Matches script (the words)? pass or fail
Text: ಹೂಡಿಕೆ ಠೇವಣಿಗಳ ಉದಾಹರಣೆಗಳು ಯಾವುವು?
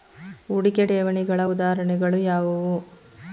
pass